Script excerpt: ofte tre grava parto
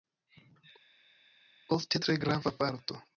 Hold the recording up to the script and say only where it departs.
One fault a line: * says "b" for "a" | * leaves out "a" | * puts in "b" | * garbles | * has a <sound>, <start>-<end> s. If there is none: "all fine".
all fine